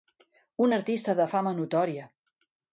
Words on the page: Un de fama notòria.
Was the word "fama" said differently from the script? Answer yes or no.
no